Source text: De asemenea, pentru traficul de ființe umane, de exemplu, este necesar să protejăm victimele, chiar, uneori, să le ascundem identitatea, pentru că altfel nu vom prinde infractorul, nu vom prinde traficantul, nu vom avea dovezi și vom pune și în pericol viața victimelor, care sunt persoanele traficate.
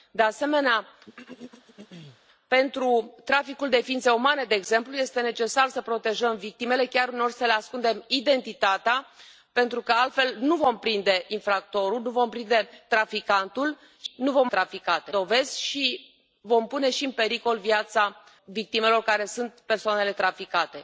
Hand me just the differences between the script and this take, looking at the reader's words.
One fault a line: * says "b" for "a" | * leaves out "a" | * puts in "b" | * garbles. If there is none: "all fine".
* says "traficate" for "avea"